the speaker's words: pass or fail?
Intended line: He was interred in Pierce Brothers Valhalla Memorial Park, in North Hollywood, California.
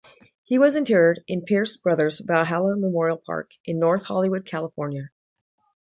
pass